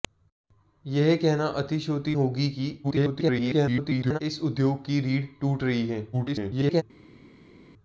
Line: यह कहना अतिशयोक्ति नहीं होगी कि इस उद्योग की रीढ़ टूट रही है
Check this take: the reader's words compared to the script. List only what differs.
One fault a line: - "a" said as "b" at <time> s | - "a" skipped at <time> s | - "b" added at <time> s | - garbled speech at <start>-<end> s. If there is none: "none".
- "नहीं" skipped at 2.1 s
- garbled speech at 2.8-4.2 s
- garbled speech at 6.1-6.8 s